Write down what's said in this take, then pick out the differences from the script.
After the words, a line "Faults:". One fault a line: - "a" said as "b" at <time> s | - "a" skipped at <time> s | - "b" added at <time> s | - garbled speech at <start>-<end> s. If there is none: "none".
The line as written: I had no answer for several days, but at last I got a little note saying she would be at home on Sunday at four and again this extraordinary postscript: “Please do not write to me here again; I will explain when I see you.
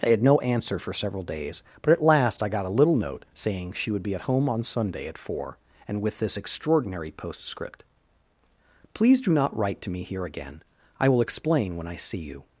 I had no answer for several days, but at last I got a little note saying she would be at home on Sunday at four and with this extraordinary postscript: “Please do not write to me here again; I will explain when I see you.
Faults:
- "again" said as "with" at 6.0 s